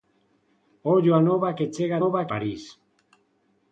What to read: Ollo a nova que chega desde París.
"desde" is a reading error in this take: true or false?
true